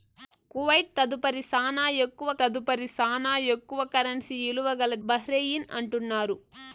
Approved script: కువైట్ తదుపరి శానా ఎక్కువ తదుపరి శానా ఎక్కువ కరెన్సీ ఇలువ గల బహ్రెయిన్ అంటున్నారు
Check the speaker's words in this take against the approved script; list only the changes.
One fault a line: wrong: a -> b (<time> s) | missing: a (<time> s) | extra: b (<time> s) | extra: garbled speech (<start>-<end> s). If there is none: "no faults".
no faults